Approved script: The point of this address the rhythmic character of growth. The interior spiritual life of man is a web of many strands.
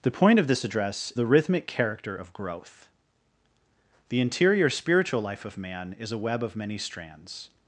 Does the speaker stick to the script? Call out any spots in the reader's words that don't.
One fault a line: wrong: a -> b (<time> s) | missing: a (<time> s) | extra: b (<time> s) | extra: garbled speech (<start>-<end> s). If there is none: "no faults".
no faults